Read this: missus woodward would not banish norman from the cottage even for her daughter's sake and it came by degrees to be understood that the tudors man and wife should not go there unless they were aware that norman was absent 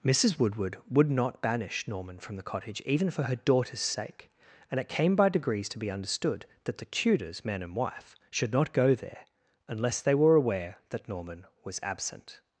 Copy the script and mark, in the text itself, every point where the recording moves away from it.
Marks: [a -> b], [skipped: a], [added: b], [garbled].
missus woodward would not banish norman from the cottage even for her daughter's sake and it came by degrees to be understood that the tudors man and wife should not go there unless they were aware that norman was absent